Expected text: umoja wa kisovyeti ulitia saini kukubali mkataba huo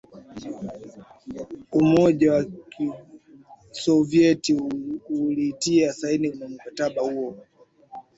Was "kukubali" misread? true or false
true